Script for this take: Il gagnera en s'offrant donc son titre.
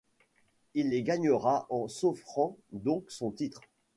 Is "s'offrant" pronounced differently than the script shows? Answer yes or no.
no